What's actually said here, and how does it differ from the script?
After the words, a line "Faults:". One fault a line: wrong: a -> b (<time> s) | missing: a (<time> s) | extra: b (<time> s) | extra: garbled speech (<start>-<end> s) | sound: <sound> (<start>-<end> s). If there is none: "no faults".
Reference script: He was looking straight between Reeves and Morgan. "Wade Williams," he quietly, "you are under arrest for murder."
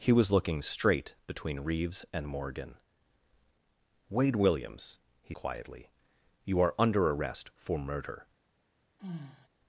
He was looking straight between Reeves and Morgan. "Wade Williams," he quietly, "you are under arrest for murder."
Faults:
sound: sigh (9.0-9.5 s)